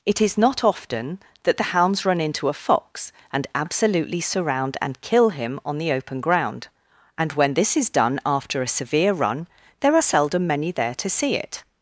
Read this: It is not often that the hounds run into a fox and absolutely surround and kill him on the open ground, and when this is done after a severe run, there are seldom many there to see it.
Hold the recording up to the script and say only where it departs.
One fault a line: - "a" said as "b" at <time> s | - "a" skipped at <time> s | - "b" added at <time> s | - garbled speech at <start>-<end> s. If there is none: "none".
none